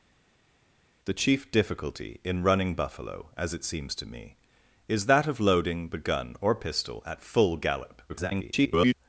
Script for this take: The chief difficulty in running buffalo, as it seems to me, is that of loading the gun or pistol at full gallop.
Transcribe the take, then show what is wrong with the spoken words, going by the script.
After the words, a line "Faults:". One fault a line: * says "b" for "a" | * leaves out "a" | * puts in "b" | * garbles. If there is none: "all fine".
The chief difficulty in running buffalo, as it seems to me, is that of loading the gun or pistol at full gallop. [garbled]
Faults:
* garbles